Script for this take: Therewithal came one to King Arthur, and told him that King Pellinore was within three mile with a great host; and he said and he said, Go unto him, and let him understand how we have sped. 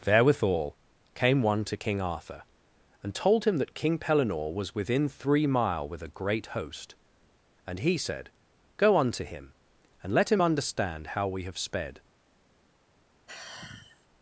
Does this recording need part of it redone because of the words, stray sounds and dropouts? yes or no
yes